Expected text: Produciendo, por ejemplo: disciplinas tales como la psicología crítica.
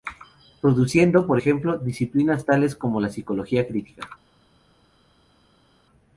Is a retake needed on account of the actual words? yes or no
no